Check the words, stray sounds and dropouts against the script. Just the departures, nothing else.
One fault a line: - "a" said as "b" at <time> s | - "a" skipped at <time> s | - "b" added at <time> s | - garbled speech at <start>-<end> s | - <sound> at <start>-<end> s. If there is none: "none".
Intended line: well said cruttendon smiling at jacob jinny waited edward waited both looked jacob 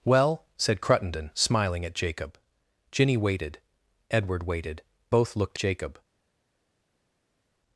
none